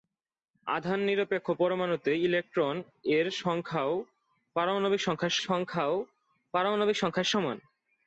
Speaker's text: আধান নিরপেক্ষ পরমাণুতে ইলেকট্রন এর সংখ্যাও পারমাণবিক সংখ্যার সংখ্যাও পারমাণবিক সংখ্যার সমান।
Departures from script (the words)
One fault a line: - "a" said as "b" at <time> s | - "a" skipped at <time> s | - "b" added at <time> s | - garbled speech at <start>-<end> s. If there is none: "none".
none